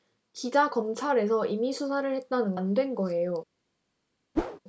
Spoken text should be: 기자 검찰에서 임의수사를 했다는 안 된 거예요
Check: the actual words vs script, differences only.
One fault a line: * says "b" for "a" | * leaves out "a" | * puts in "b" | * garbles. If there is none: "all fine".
all fine